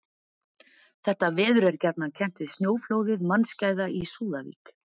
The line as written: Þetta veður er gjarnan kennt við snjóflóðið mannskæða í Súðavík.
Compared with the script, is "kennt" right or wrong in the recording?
right